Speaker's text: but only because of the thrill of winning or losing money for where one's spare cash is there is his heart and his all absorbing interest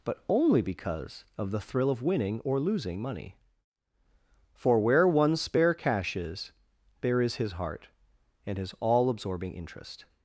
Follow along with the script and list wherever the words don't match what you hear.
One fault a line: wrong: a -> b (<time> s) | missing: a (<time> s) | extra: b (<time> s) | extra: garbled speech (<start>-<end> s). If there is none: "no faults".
no faults